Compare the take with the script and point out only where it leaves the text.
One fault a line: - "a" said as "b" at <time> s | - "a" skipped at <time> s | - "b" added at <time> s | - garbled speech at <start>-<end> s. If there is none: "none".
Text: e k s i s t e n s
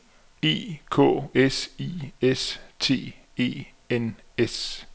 none